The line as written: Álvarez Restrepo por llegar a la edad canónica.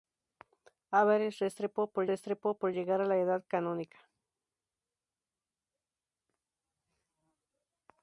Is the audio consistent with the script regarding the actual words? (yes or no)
no